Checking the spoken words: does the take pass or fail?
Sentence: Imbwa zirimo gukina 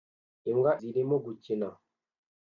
pass